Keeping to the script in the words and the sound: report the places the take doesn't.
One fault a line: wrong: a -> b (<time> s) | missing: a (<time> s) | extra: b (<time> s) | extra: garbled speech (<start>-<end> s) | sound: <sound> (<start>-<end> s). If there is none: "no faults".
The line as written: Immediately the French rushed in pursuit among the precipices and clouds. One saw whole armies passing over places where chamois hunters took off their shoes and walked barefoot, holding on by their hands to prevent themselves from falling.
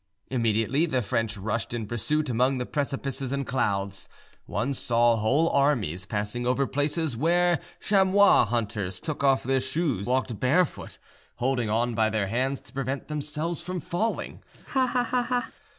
missing: and (10.1 s)
sound: laugh (14.5-15.5 s)